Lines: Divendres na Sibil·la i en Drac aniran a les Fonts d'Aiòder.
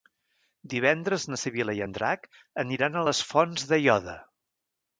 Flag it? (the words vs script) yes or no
no